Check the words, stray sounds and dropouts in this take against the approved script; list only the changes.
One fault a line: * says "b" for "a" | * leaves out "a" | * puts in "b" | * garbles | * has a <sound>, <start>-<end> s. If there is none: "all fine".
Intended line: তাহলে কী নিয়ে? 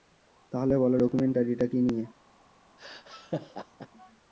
* puts in "বলো ডকুমেন্টারিটা"
* has a laugh, 2.8-3.9 s